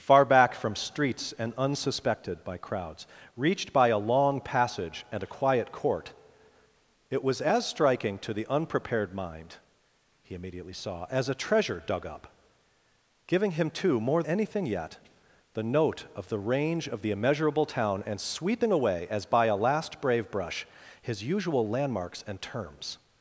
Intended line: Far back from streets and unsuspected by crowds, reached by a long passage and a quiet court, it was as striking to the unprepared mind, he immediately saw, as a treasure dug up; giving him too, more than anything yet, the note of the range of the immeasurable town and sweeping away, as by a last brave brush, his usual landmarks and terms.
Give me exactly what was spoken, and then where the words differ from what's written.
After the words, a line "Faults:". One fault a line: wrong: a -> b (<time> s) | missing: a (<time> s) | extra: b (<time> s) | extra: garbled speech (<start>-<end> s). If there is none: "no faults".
Far back from streets and unsuspected by crowds, reached by a long passage and a quiet court, it was as striking to the unprepared mind, he immediately saw, as a treasure dug up; giving him too, more anything yet, the note of the range of the immeasurable town and sweeping away, as by a last brave brush, his usual landmarks and terms.
Faults:
missing: than (14.2 s)